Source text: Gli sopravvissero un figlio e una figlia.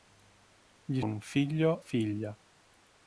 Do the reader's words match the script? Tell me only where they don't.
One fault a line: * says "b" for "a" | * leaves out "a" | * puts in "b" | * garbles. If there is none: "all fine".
* leaves out "sopravvissero"
* leaves out "e una"